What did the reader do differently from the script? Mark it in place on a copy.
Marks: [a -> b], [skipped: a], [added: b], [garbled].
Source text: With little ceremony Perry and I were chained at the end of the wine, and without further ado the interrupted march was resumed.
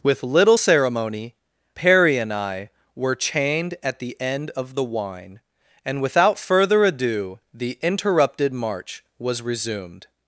With little ceremony Perry and I were chained at the end of the wine, and without further ado the interrupted march was resumed.